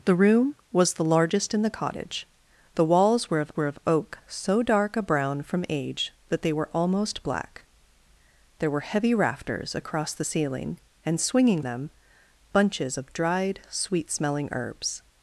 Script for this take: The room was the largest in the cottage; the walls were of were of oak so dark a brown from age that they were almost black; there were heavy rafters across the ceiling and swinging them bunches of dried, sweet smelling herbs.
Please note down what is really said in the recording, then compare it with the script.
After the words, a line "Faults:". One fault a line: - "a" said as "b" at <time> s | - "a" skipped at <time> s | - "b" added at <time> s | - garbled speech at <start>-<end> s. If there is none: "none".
The room was the largest in the cottage; the walls were of were of oak so dark a brown from age that they were almost black; there were heavy rafters across the ceiling and swinging them bunches of dried, sweet smelling herbs.
Faults:
none